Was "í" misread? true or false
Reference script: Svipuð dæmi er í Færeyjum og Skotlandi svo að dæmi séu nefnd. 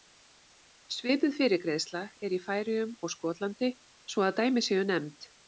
false